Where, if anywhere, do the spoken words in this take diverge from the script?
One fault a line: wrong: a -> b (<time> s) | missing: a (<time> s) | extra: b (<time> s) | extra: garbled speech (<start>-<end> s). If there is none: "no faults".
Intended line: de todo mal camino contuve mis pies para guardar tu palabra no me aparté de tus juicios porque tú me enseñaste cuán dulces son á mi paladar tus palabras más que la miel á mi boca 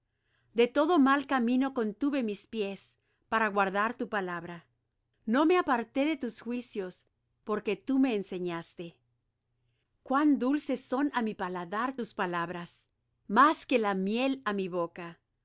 no faults